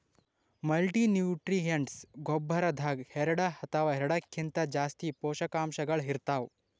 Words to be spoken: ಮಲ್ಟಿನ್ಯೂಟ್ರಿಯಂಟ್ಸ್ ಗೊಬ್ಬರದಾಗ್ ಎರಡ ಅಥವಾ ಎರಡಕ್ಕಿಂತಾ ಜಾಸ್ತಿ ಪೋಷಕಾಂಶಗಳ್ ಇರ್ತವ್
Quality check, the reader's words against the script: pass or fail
pass